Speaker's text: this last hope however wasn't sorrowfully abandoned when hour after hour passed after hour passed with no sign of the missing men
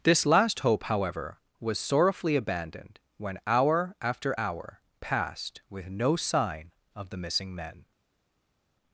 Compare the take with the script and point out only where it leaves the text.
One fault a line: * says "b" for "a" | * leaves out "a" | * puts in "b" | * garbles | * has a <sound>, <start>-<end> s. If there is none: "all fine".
* says "was" for "wasn't"
* leaves out "after hour passed"